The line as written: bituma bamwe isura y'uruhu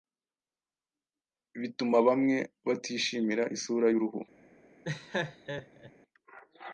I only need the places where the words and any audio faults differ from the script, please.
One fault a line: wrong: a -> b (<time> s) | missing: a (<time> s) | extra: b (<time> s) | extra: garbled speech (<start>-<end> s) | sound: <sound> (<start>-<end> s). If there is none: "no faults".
extra: batishimira (2.7 s)
sound: laugh (4.8-5.9 s)